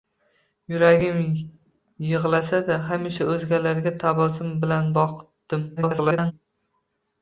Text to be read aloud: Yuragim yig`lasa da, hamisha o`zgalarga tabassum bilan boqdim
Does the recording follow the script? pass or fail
fail